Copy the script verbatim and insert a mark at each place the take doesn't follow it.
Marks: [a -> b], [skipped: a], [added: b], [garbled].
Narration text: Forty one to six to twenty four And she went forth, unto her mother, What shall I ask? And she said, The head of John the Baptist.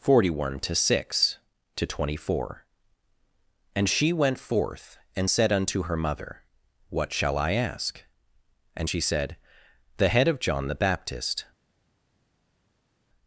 Forty one to six to twenty four And she went forth, [added: and said] unto her mother, What shall I ask? And she said, The head of John the Baptist.